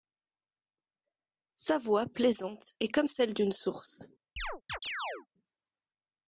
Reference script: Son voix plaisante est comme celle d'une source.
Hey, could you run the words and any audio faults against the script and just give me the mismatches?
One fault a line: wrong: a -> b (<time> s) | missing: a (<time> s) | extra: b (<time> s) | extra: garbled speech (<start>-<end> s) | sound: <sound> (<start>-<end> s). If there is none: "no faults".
wrong: Son -> Sa (1.5 s)
sound: chirp (4.4-5.3 s)